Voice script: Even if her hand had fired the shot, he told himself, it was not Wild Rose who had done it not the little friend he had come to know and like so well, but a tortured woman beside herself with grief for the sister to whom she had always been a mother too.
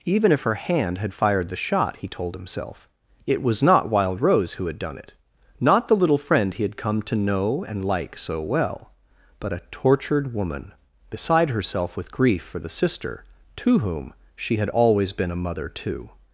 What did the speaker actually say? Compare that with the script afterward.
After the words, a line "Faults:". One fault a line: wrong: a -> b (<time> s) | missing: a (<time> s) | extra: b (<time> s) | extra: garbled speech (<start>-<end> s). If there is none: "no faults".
Even if her hand had fired the shot, he told himself, it was not Wild Rose who had done it not the little friend he had come to know and like so well, but a tortured woman beside herself with grief for the sister to whom she had always been a mother too.
Faults:
no faults